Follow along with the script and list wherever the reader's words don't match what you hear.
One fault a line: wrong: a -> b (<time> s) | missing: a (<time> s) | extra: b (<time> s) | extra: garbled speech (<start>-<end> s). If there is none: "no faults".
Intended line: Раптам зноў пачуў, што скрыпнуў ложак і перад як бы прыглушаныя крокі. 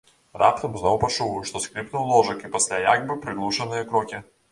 wrong: перад -> пасля (2.5 s)